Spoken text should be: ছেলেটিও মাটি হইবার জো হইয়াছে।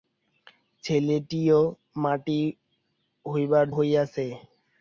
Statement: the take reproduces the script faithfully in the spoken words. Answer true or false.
false